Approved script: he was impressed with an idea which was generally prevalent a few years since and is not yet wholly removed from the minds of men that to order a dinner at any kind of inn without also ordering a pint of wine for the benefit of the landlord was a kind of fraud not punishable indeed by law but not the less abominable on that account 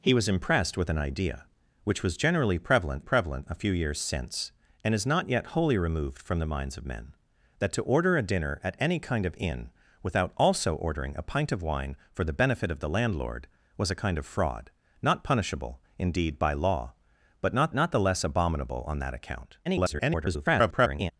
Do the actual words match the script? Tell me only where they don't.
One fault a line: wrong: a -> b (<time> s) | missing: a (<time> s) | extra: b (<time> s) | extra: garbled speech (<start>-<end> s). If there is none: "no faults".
extra: prevalent (3.0 s)
extra: not (17.7 s)
extra: garbled speech (19.6-21.1 s)